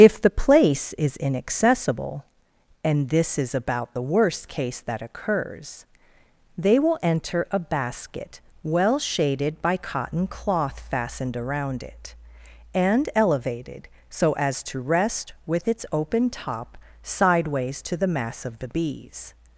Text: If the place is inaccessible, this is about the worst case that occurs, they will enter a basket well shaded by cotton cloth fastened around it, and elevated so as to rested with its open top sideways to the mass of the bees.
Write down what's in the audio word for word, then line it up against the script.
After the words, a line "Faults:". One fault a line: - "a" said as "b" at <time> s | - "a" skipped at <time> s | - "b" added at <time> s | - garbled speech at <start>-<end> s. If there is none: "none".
If the place is inaccessible, and this is about the worst case that occurs, they will enter a basket well shaded by cotton cloth fastened around it, and elevated so as to rest with its open top sideways to the mass of the bees.
Faults:
- "and" added at 2.8 s
- "rested" said as "rest" at 14.8 s